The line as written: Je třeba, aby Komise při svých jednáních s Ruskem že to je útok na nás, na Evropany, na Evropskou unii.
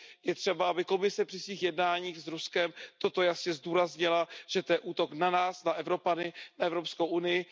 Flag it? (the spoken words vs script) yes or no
yes